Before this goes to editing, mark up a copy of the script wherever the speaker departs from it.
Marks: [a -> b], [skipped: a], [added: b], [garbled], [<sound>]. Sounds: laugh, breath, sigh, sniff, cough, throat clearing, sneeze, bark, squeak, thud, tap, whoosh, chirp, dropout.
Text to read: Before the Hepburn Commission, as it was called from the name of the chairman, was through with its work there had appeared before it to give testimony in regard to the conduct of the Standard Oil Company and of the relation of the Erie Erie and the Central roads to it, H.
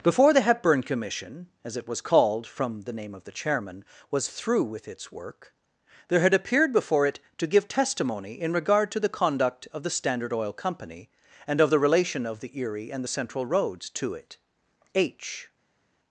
Before the Hepburn Commission, as it was called from the name of the chairman, was through with its work there had appeared before it to give testimony in regard to the conduct of the Standard Oil Company and of the relation of the Erie [skipped: Erie] and the Central roads to it, H.